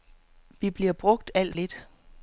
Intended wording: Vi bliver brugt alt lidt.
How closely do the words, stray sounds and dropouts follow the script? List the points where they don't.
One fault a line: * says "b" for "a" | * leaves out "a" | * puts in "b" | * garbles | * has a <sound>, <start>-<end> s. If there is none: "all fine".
all fine